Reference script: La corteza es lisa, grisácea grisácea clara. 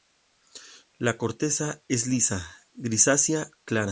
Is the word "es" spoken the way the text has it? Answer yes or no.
yes